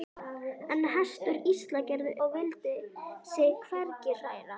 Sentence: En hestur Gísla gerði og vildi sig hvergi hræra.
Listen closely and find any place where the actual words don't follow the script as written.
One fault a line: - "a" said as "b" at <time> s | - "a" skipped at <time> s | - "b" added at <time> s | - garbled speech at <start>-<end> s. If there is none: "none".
none